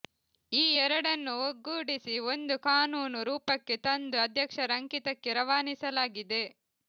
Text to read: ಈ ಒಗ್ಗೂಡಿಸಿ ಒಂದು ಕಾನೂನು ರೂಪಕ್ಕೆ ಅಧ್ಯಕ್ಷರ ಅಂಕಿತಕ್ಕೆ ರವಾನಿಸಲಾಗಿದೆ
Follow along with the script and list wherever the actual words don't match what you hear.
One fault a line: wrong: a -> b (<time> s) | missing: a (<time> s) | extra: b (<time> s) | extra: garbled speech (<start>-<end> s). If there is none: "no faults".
extra: ಎರಡನ್ನೂ (0.8 s)
extra: ತಂದು (3.9 s)